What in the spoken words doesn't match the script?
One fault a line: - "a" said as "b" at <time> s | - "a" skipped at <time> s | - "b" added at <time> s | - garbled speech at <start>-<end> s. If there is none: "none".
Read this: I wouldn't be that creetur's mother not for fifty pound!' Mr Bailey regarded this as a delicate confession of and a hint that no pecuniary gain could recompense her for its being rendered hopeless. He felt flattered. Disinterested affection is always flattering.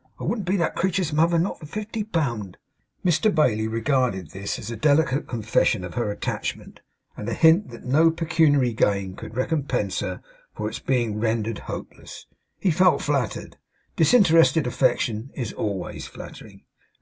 - "her attachment" added at 6.0 s